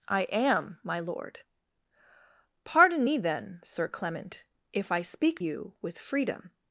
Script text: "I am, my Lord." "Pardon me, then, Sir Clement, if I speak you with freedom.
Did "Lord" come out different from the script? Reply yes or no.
no